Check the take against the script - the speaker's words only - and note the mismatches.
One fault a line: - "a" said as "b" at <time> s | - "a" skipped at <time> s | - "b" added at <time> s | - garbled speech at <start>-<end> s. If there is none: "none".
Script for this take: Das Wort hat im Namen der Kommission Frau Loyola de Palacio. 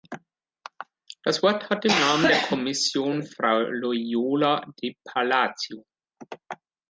none